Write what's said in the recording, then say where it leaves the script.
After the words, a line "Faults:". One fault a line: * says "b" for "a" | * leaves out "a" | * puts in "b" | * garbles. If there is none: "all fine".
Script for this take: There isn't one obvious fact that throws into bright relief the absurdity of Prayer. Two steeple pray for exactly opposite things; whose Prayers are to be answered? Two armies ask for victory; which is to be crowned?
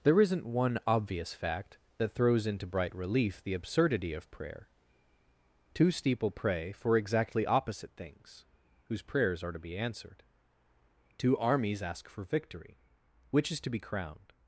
There isn't one obvious fact that throws into bright relief the absurdity of Prayer. Two steeple pray for exactly opposite things; whose Prayers are to be answered? Two armies ask for victory; which is to be crowned?
Faults:
all fine